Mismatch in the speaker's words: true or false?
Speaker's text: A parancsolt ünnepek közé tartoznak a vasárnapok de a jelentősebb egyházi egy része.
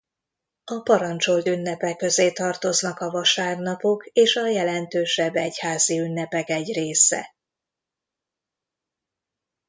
true